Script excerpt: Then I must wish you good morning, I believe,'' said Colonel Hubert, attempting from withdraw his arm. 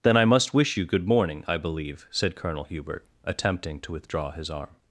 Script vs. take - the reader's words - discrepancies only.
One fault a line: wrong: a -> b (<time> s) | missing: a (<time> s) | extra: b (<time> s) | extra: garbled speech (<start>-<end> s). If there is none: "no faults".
wrong: from -> to (3.8 s)